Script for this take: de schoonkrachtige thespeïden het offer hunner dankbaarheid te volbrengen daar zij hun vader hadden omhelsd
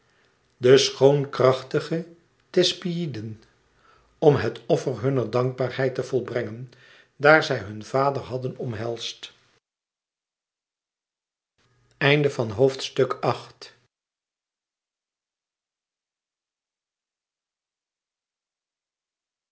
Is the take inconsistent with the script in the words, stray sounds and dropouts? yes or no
yes